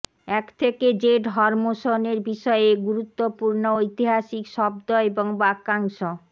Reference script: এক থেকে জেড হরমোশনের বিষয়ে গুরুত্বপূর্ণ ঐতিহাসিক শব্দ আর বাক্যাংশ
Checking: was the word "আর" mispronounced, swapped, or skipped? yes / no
yes